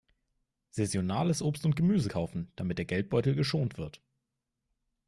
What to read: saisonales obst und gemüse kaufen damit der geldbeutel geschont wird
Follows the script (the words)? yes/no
yes